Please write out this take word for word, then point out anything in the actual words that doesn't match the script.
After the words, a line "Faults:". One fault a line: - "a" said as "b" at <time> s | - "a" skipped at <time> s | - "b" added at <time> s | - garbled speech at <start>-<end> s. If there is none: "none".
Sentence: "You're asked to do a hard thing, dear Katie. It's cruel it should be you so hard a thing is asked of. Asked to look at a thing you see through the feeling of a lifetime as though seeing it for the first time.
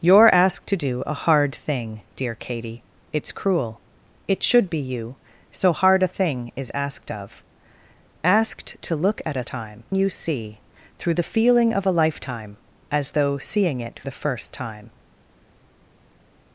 "You're asked to do a hard thing, dear Katie. It's cruel it should be you so hard a thing is asked of. Asked to look at a time you see through the feeling of a lifetime as though seeing it the first time.
Faults:
- "thing" said as "time" at 9.5 s
- "for" skipped at 14.0 s